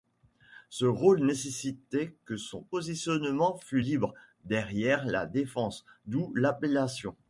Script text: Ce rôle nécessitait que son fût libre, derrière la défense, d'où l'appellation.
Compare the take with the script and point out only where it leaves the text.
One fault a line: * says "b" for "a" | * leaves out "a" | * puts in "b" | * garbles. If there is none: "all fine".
* puts in "positionnement"